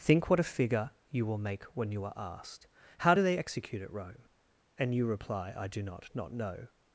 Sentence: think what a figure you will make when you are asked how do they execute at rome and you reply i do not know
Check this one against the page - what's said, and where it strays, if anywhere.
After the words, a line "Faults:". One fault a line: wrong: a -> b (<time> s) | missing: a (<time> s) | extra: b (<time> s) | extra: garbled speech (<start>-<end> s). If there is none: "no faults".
think what a figure you will make when you are asked how do they execute at rome and you reply i do not not know
Faults:
extra: not (6.1 s)